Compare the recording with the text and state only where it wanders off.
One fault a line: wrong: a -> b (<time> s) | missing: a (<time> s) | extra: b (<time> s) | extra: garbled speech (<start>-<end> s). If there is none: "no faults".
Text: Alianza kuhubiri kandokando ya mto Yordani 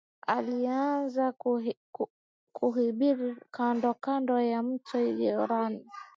no faults